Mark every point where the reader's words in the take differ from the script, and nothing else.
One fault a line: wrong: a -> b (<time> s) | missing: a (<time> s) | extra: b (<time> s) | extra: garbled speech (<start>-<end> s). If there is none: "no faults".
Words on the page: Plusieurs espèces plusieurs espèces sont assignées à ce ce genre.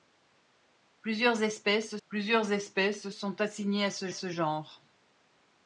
no faults